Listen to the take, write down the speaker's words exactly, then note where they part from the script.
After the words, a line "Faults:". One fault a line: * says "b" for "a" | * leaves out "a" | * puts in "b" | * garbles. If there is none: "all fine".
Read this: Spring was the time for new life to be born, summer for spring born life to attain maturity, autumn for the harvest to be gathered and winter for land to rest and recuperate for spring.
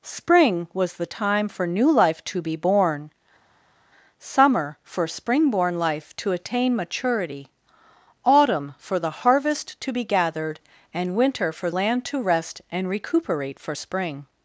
Spring was the time for new life to be born, summer for spring born life to attain maturity, autumn for the harvest to be gathered and winter for land to rest and recuperate for spring.
Faults:
all fine